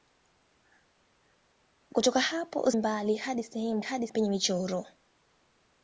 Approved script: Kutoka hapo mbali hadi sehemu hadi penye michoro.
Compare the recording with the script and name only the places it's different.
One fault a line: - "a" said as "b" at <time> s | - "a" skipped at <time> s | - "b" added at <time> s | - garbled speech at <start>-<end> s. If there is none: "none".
none